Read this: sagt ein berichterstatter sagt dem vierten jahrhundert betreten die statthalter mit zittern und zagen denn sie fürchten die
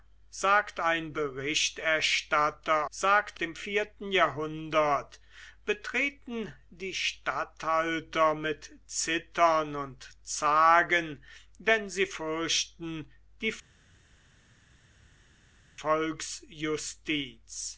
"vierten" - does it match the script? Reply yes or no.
yes